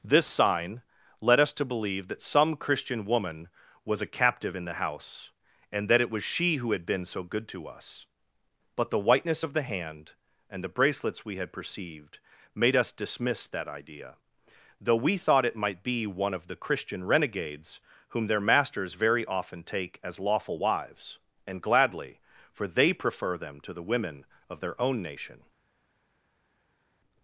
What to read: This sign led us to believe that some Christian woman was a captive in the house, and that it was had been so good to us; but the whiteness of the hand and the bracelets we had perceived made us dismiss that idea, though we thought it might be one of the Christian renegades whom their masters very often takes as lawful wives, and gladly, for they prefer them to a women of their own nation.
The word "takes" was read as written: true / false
false